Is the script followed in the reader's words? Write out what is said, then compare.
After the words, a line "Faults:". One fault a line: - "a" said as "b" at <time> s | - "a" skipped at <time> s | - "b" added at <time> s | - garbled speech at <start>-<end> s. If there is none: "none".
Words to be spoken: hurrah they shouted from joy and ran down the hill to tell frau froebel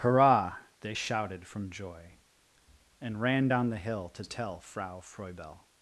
hurrah they shouted from joy and ran down the hill to tell frau froebel
Faults:
none